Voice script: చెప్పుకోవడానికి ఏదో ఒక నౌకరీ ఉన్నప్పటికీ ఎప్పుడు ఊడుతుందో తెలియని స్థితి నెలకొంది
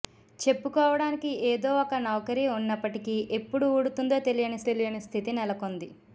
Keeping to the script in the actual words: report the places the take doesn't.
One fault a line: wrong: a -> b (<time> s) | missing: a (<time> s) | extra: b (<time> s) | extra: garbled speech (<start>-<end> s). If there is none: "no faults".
extra: తెలియని (4.7 s)